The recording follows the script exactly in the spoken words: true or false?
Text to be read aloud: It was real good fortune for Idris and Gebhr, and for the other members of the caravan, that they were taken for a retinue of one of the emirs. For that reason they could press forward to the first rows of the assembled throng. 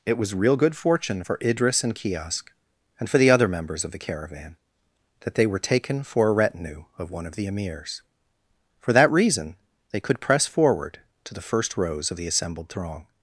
false